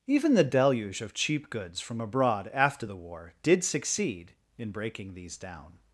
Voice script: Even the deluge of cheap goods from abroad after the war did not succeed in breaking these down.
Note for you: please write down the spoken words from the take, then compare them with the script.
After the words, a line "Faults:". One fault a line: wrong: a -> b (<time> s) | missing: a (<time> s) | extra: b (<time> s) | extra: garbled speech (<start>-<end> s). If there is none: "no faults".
Even the deluge of cheap goods from abroad after the war did succeed in breaking these down.
Faults:
missing: not (3.6 s)